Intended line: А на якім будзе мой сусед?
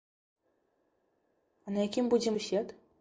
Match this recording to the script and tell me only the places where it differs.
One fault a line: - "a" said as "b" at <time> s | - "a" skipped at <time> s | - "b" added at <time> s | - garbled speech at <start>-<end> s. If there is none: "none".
- "мой" skipped at 2.4 s